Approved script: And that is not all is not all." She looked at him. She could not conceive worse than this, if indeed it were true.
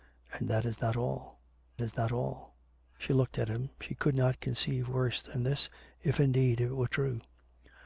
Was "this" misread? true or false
false